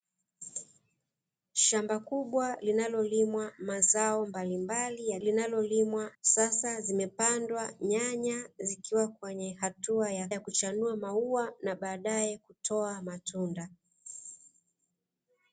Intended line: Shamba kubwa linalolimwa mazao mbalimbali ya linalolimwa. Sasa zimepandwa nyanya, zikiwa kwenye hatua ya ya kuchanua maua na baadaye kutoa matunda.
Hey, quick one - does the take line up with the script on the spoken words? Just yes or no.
yes